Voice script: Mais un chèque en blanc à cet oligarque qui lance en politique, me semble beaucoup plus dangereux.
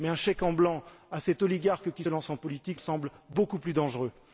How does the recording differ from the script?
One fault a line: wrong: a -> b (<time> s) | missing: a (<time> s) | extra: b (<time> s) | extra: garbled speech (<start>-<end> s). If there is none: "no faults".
no faults